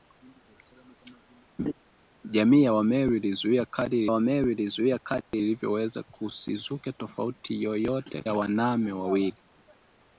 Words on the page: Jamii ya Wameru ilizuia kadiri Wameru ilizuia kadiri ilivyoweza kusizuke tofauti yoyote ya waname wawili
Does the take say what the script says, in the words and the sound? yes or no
no